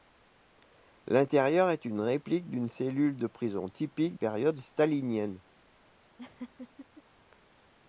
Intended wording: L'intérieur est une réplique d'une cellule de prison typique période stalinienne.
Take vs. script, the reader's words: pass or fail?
pass